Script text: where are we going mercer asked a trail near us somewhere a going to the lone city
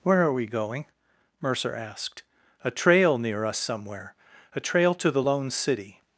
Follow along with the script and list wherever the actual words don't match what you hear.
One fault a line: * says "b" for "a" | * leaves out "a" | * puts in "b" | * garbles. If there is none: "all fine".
* says "trail" for "going"